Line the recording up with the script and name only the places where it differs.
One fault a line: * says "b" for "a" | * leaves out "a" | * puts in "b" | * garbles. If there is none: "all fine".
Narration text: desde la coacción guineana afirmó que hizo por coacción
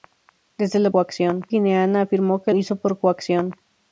all fine